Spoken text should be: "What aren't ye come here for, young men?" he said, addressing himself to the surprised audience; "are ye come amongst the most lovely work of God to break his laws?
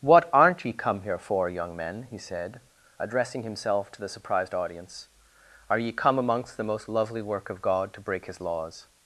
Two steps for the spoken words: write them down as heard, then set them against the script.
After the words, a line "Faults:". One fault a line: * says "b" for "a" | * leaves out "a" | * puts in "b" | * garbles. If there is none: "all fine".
"What aren't ye come here for, young men?" he said, addressing himself to the surprised audience; "are ye come amongst the most lovely work of God to break his laws?
Faults:
all fine